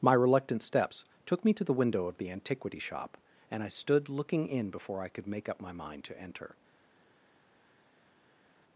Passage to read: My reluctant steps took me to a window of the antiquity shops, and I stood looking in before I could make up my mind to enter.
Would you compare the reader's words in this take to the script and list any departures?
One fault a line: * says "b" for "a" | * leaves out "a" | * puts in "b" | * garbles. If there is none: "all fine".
* says "the" for "a"
* says "shop" for "shops"